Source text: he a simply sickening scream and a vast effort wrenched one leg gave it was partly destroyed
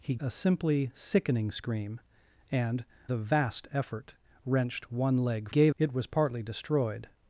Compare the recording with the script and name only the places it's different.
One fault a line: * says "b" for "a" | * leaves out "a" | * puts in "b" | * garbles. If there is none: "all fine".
all fine